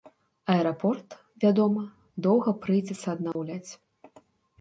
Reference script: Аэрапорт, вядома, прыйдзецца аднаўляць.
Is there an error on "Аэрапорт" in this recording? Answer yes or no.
no